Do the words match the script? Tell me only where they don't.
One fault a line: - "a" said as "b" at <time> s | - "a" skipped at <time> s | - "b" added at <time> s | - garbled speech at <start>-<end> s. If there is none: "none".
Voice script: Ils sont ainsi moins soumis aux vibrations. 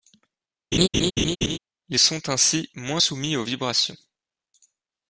none